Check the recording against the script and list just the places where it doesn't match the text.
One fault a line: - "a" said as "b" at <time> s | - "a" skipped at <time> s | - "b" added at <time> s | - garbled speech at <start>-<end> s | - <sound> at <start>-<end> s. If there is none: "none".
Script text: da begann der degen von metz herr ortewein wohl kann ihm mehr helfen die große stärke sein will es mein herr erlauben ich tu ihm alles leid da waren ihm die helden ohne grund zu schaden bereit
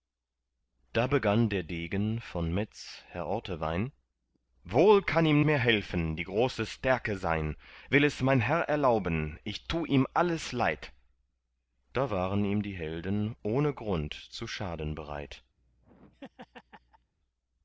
- laugh at 15.6-17.1 s